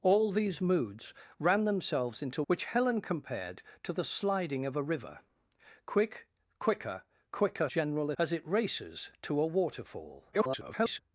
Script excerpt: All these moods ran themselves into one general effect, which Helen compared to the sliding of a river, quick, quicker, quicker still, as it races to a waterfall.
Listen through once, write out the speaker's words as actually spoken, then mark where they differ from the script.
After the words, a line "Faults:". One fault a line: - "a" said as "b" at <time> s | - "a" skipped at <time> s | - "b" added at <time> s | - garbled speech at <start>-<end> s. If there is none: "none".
All these moods ran themselves into which Helen compared to the sliding of a river, quick, quicker, quicker general, as it races to a waterfall. [garbled]
Faults:
- "one general effect" skipped at 2.4 s
- "still" said as "general" at 7.7 s
- garbled speech at 10.3-11.0 s